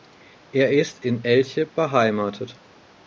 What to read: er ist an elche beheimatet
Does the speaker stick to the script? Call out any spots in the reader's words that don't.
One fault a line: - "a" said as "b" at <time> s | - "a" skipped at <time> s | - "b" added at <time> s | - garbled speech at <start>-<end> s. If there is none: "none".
- "an" said as "in" at 1.1 s